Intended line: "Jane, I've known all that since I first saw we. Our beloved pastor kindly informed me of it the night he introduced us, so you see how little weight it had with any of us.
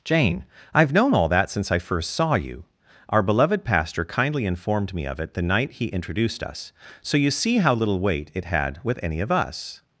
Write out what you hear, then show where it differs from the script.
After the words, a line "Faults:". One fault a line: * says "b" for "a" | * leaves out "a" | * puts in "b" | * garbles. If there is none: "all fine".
"Jane, I've known all that since I first saw you. Our beloved pastor kindly informed me of it the night he introduced us, so you see how little weight it had with any of us.
Faults:
* says "you" for "we"